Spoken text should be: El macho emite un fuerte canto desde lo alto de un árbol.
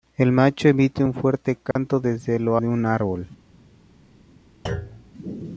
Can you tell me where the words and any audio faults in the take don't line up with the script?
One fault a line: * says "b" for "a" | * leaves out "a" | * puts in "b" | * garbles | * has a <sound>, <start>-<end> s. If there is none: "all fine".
* has a dropout, 1.7-1.8 s
* leaves out "alto"
* has a thud, 4.7-5.1 s